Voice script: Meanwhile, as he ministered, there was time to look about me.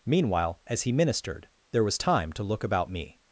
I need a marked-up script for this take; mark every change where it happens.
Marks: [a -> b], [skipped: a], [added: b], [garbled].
Meanwhile, as he ministered, there was time to look about me.